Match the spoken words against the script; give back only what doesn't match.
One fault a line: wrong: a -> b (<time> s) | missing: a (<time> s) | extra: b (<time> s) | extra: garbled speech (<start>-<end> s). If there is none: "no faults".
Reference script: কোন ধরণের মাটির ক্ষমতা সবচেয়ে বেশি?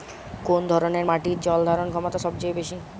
extra: জল ধারণ (1.4 s)